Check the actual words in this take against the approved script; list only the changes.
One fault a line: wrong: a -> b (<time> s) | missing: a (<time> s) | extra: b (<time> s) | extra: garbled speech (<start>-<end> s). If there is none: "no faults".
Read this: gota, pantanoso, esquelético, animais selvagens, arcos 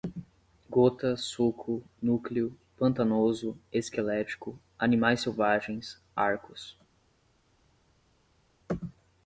extra: suco núcleo (1.1 s)